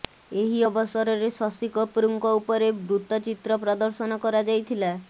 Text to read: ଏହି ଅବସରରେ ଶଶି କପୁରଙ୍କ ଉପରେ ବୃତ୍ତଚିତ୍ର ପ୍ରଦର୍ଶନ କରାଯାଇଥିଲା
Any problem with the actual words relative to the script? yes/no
no